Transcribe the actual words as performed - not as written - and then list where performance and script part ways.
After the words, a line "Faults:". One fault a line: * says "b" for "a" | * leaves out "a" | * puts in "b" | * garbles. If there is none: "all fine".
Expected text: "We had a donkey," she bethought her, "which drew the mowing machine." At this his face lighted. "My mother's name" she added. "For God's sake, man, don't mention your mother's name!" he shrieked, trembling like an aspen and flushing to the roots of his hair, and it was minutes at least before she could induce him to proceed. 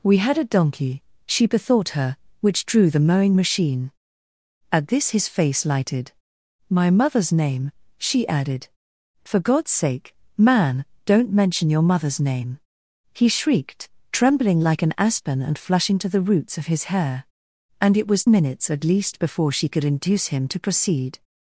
"We had a donkey," she bethought her, "which drew the mowing machine." At this his face lighted. "My mother's name" she added. "For God's sake, man, don't mention your mother's name!" he shrieked, trembling like an aspen and flushing to the roots of his hair, and it was minutes at least before she could induce him to proceed.
Faults:
all fine